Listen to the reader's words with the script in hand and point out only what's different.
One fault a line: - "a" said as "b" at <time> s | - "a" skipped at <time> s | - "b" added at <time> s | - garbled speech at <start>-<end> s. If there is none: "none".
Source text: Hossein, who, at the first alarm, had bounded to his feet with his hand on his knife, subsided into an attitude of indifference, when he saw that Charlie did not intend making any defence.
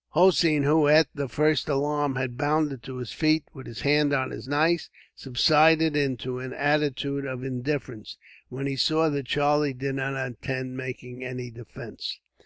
none